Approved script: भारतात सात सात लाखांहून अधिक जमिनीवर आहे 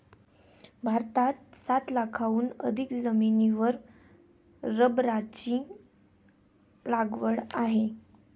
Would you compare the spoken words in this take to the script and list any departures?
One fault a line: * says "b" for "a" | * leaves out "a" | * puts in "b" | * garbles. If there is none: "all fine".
* leaves out "सात"
* puts in "रबराची लागवड"